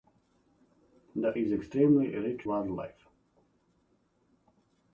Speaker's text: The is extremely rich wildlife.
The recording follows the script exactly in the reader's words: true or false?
true